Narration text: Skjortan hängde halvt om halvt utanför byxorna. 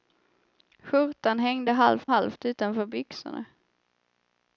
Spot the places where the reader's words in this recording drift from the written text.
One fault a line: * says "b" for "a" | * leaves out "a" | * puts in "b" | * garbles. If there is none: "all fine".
* leaves out "om"